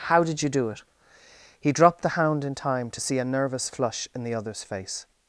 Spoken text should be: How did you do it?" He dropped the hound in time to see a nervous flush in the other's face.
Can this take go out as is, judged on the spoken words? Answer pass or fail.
pass